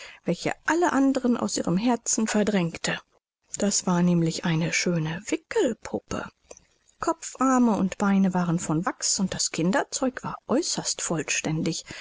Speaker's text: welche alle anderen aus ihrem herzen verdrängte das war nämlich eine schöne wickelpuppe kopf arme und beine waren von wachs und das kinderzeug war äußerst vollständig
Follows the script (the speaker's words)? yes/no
yes